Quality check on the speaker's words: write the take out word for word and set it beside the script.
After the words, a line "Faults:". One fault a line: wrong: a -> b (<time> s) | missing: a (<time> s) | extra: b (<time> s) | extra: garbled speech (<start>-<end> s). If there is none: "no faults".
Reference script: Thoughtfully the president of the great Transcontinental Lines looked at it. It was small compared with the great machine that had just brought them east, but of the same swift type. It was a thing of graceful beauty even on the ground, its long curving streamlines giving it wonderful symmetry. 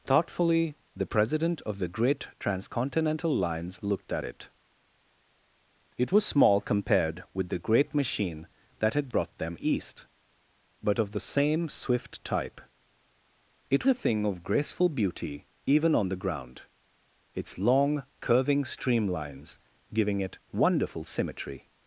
Thoughtfully the president of the great Transcontinental Lines looked at it. It was small compared with the great machine that had brought them east, but of the same swift type. It a thing of graceful beauty even on the ground, its long curving streamlines giving it wonderful symmetry.
Faults:
missing: just (9.1 s)
missing: was (13.9 s)